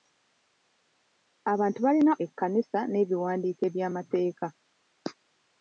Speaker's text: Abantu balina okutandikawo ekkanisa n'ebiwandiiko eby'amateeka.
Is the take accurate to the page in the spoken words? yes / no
no